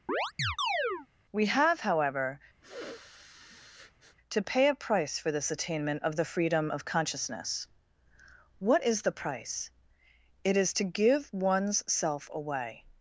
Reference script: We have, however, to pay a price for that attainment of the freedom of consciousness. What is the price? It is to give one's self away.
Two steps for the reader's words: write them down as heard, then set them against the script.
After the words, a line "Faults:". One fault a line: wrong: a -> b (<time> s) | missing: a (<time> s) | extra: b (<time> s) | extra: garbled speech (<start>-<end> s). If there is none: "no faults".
We have, however, to pay a price for this attainment of the freedom of consciousness. What is the price? It is to give one's self away.
Faults:
wrong: that -> this (5.3 s)